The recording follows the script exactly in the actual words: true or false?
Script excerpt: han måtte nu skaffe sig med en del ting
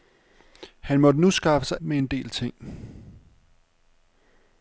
true